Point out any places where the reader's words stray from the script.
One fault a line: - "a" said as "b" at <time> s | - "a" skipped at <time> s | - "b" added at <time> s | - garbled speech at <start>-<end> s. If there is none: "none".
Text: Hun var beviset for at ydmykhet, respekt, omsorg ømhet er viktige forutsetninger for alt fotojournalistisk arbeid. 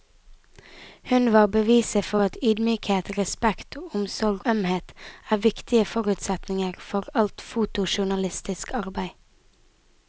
none